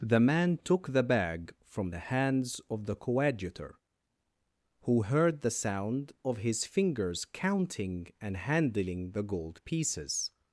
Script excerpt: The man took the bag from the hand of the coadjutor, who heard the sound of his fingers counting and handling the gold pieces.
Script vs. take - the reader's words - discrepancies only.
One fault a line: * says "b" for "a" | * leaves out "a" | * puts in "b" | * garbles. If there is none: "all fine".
* says "hands" for "hand"